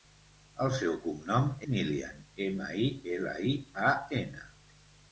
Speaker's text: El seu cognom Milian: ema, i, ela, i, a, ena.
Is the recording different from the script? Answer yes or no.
no